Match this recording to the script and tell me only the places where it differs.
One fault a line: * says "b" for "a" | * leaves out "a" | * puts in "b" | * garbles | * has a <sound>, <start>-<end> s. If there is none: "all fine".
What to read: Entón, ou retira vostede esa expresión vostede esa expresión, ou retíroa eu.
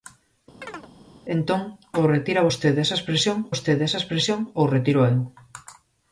* has a chirp, 0.6-0.9 s